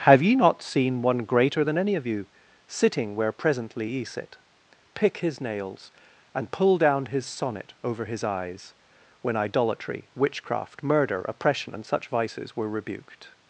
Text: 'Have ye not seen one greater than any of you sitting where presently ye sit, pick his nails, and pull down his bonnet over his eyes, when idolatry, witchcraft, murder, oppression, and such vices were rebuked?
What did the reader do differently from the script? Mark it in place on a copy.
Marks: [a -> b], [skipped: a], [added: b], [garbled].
'Have ye not seen one greater than any of you sitting where presently ye sit, pick his nails, and pull down his [bonnet -> sonnet] over his eyes, when idolatry, witchcraft, murder, oppression, and such vices were rebuked?